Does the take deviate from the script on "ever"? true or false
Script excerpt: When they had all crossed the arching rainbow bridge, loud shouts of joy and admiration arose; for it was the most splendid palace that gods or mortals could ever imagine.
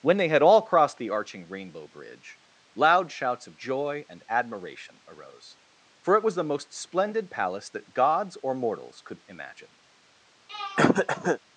true